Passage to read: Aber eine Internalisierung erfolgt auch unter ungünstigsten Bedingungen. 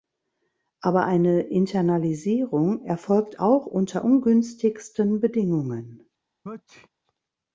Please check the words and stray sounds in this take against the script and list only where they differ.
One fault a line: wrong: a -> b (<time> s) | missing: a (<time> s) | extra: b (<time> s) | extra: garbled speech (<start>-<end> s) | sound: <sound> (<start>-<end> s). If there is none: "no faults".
sound: sneeze (6.4-6.9 s)